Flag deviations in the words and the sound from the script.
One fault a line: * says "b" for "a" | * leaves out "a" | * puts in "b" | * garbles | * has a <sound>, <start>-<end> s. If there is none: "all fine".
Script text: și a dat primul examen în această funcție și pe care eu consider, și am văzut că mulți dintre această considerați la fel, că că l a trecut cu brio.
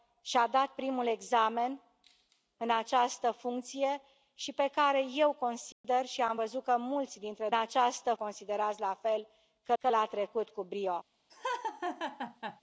* has a dropout, 5.7-5.8 s
* has a laugh, 11.3-12.6 s